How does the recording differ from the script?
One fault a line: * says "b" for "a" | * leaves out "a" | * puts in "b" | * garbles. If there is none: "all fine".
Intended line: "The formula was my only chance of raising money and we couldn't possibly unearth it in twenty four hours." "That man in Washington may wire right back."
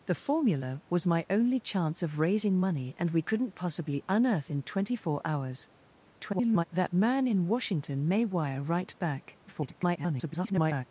* leaves out "it"
* garbles
* garbles